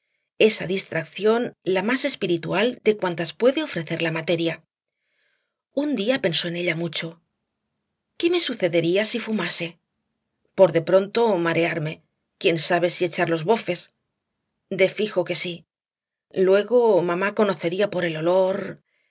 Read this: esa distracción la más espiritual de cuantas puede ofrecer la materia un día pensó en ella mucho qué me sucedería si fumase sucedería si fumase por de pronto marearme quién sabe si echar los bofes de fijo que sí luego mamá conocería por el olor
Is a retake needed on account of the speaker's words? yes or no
yes